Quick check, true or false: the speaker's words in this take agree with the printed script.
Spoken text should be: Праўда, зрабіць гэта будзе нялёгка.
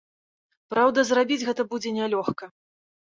true